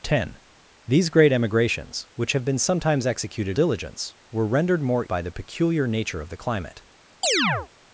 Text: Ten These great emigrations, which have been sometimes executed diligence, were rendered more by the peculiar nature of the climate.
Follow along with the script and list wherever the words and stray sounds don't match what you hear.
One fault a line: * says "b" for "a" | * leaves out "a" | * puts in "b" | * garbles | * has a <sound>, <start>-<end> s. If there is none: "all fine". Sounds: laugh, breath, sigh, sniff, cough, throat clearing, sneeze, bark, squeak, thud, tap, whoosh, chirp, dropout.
* has a chirp, 7.2-7.7 s